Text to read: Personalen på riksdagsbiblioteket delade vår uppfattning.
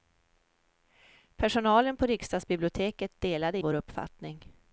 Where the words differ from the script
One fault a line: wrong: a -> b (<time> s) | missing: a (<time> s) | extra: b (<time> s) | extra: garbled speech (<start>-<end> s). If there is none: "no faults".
no faults